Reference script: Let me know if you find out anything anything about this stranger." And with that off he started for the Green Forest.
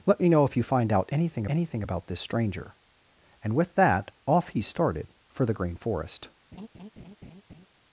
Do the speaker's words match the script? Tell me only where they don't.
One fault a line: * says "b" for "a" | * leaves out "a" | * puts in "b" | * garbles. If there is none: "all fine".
all fine